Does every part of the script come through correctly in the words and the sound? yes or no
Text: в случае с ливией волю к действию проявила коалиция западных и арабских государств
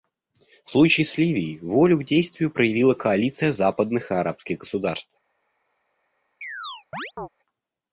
no